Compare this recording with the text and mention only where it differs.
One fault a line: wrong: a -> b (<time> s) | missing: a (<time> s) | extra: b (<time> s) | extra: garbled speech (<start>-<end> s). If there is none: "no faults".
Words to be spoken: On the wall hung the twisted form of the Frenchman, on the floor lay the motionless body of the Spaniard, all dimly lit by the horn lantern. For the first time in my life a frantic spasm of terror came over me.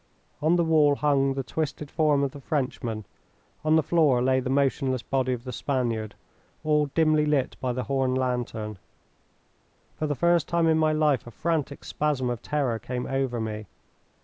no faults